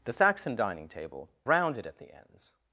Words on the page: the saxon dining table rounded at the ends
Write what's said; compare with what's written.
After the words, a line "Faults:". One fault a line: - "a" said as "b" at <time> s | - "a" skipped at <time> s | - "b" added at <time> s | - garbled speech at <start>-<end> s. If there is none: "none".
the saxon dining table rounded at the ends
Faults:
none